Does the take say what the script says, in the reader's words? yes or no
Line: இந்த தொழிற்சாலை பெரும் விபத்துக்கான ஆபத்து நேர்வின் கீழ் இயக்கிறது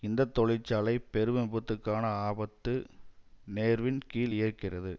yes